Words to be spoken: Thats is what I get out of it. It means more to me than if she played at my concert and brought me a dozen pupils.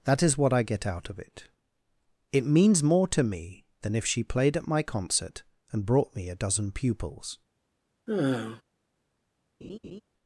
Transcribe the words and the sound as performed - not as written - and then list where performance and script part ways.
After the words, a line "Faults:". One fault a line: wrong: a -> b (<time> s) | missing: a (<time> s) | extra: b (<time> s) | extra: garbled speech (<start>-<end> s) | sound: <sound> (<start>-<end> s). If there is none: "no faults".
That is what I get out of it. It means more to me than if she played at my concert and brought me a dozen pupils.
Faults:
wrong: Thats -> That (0.0 s)
sound: sigh (8.1-8.6 s)
sound: laugh (9.6-10.0 s)